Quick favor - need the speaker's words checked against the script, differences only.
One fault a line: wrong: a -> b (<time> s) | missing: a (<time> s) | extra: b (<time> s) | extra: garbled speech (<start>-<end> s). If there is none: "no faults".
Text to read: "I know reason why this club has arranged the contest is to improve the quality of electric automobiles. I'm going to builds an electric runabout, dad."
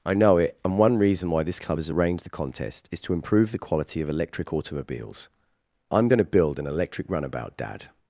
extra: it and one (0.4 s)
wrong: builds -> build (6.3 s)